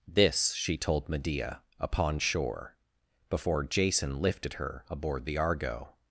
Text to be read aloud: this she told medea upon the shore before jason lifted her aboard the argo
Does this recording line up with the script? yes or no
no